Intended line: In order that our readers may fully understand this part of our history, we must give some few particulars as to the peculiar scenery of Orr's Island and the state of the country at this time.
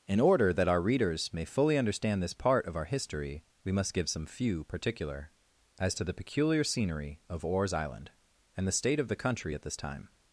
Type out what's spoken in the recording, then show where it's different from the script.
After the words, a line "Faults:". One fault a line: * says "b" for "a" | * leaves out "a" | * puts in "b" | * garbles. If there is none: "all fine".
In order that our readers may fully understand this part of our history, we must give some few particular as to the peculiar scenery of Orr's Island and the state of the country at this time.
Faults:
* says "particular" for "particulars"